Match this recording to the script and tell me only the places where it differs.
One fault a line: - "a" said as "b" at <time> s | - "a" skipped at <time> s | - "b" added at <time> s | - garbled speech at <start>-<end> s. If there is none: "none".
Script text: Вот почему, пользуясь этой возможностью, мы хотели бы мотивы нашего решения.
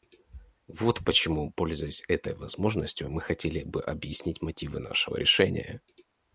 - "объяснить" added at 3.8 s